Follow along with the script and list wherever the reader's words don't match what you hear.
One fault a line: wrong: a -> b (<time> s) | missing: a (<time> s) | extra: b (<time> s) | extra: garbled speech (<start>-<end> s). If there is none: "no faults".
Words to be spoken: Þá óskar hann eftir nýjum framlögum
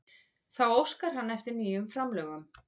no faults